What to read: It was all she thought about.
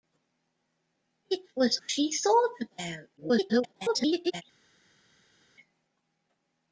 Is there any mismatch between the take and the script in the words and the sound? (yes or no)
yes